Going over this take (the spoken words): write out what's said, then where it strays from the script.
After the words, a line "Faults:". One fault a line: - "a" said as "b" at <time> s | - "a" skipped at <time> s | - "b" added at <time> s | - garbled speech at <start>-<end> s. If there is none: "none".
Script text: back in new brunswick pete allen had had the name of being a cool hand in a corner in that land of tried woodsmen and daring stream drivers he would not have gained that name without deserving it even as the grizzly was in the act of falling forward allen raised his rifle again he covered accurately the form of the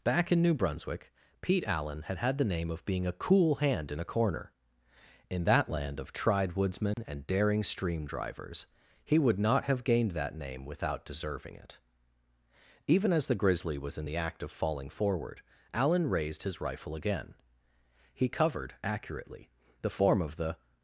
back in new brunswick pete allen had had the name of being a cool hand in a corner in that land of tried woodsmen and daring stream drivers he would not have gained that name without deserving it even as the grizzly was in the act of falling forward allen raised his rifle again he covered accurately the form of the
Faults:
none